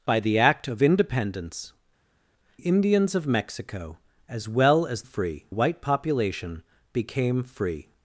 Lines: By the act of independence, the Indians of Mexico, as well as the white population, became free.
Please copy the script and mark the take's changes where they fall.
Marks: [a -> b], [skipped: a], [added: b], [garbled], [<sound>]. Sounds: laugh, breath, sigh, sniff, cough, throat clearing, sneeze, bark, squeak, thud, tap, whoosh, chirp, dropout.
By the act of independence, [skipped: the] Indians of Mexico, as well as [the -> free] white population, became free.